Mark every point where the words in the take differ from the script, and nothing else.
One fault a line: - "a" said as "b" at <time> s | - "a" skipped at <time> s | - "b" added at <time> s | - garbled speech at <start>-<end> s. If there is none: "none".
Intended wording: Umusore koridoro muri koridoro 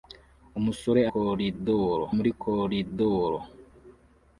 none